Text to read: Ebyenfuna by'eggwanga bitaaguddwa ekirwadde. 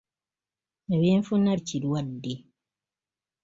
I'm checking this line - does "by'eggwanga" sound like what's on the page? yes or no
no